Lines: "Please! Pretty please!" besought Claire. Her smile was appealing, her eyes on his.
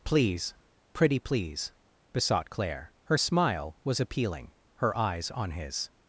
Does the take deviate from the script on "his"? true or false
false